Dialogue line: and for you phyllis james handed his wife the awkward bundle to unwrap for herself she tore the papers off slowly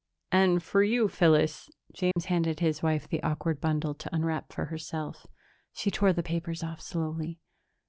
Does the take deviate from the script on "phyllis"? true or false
false